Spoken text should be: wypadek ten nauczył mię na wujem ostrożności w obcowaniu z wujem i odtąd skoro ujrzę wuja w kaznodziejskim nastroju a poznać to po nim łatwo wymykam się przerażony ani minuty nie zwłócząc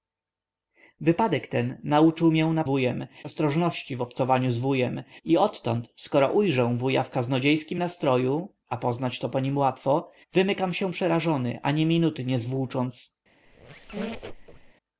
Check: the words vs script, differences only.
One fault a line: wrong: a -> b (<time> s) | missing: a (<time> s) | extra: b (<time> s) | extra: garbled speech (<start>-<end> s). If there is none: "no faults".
no faults